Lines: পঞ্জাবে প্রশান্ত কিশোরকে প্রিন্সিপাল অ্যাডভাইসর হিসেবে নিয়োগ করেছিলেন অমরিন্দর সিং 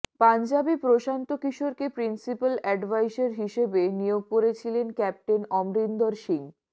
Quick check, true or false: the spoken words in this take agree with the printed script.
false